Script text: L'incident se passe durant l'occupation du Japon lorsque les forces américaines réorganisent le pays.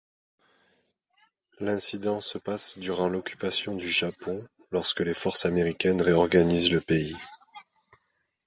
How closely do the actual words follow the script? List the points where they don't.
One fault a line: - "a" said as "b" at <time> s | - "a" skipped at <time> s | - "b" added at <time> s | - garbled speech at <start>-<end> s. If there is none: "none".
none